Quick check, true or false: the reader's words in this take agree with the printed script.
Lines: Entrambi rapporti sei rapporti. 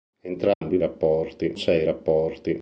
true